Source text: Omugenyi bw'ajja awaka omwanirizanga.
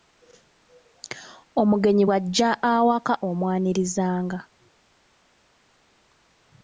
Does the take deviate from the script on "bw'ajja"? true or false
false